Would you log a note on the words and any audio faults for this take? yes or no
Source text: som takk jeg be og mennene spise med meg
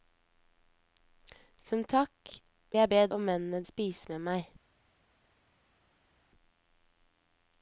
no